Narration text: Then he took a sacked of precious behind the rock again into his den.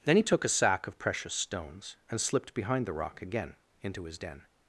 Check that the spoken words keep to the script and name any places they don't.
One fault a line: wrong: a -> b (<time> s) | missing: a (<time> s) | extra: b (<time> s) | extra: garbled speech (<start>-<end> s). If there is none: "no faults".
wrong: sacked -> sack (0.5 s)
extra: stones and slipped (1.3 s)